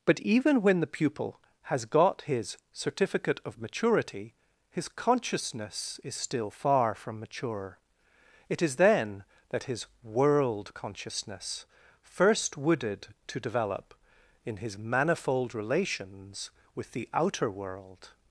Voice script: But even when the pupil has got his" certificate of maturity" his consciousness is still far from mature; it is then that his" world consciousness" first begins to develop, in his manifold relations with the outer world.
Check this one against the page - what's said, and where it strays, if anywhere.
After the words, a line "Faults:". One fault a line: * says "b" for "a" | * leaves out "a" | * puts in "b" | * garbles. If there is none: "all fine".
But even when the pupil has got his" certificate of maturity" his consciousness is still far from mature; it is then that his" world consciousness" first wooded to develop, in his manifold relations with the outer world.
Faults:
* says "wooded" for "begins"